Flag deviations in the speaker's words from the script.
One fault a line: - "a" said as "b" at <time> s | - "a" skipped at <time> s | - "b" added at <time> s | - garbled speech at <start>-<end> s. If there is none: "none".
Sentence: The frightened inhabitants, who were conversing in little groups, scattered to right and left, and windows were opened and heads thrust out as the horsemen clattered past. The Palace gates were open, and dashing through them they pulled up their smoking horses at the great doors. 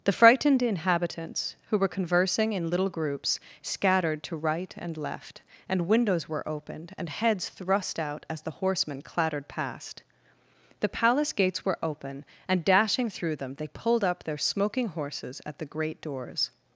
none